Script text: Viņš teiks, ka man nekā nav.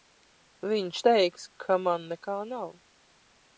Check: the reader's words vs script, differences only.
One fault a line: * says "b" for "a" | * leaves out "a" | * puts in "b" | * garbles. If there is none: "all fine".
all fine